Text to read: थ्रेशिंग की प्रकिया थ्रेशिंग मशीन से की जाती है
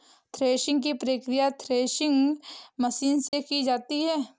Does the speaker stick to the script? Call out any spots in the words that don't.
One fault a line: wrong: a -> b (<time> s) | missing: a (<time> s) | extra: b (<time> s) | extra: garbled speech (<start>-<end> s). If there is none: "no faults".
no faults